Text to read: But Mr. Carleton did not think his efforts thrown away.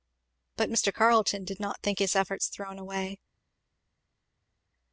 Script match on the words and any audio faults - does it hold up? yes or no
yes